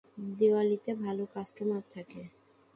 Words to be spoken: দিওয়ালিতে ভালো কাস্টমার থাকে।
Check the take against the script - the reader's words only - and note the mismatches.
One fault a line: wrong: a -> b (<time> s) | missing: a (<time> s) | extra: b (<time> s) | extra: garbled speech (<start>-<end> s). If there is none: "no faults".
no faults